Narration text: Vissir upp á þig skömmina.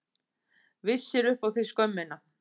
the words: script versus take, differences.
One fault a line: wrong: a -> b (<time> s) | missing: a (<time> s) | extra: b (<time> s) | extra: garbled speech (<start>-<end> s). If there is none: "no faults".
no faults